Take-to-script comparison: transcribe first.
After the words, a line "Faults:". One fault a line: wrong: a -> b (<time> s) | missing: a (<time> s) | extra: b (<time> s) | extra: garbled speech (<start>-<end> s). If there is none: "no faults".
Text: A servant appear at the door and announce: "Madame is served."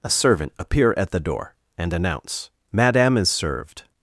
A servant appear at the door and announce: "Madame is served."
Faults:
no faults